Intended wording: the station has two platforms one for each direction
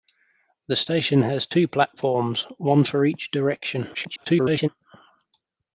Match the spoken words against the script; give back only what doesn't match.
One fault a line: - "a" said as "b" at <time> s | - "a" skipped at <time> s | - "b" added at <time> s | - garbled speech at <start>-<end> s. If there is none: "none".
- garbled speech at 3.9-4.7 s